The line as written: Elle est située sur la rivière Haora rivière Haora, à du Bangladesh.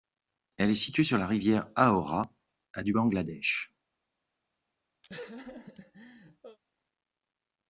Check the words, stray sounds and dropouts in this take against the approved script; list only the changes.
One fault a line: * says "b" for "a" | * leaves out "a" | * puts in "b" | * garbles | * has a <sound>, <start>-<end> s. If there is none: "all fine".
* leaves out "rivière Haora"
* has a laugh, 5.0-6.6 s